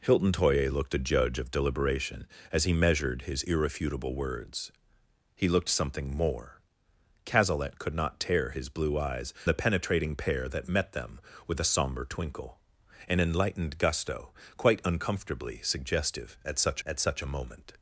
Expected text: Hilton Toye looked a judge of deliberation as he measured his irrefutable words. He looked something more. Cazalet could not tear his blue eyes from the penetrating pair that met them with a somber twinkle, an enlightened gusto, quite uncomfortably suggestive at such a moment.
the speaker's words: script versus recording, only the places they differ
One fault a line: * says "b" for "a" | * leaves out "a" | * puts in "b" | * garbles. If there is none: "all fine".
* leaves out "from"
* puts in "at such"